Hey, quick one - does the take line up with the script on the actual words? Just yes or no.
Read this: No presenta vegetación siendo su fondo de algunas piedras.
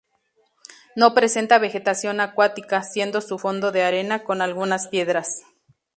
no